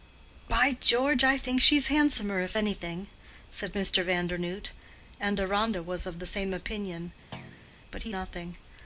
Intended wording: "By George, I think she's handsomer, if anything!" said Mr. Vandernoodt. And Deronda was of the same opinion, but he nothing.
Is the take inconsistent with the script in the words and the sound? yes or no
yes